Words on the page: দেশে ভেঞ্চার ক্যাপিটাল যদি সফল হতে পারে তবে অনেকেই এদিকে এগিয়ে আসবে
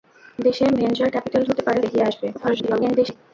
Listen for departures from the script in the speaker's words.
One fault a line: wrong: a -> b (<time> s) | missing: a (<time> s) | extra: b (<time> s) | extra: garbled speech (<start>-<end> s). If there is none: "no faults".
missing: যদি সফল (1.4 s)
missing: তবে অনেকেই এদিকে (1.8 s)
extra: garbled speech (2.3-3.2 s)